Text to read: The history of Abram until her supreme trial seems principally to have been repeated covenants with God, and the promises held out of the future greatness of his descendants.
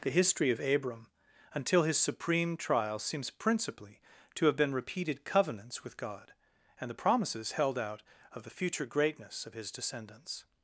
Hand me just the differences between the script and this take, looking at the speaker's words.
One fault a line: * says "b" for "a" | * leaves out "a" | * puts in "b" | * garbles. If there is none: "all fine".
* says "his" for "her"